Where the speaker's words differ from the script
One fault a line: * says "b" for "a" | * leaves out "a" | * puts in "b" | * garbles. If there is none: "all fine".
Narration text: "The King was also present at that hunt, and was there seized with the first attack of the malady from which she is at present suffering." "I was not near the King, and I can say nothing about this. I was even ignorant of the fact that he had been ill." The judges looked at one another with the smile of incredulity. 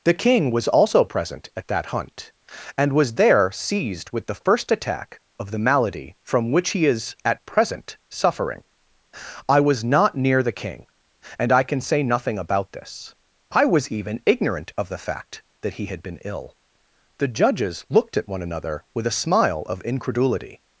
* says "he" for "she"
* says "a" for "the"